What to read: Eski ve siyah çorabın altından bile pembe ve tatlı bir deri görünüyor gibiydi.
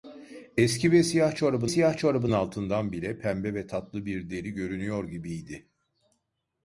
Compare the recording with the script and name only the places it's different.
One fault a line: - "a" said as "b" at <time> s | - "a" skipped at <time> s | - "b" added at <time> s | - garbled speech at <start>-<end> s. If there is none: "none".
- "siyah çorabın" added at 1.7 s